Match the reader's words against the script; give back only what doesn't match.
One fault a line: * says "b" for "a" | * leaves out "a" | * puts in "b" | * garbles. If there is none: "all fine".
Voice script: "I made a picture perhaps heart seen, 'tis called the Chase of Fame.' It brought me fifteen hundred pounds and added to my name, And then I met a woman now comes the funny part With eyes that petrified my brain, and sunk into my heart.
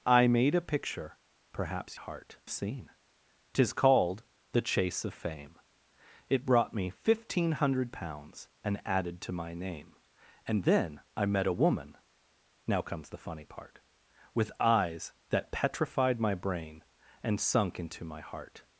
all fine